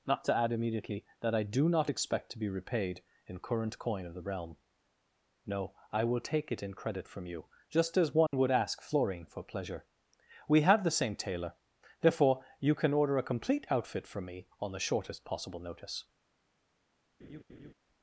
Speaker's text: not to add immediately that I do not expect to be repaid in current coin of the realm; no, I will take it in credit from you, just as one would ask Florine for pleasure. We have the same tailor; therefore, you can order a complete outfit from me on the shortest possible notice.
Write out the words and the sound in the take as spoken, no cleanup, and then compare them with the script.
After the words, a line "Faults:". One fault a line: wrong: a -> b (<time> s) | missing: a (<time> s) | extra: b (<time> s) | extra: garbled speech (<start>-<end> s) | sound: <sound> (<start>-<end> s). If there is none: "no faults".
not to add immediately that I do not expect to be repaid in current coin of the realm; no, I will take it in credit from you, just as one would ask Florine for pleasure. We have the same tailor; therefore, you can order a complete outfit from me on the shortest possible notice.
Faults:
sound: dropout (8.3-8.3 s)
sound: laugh (17.2-17.7 s)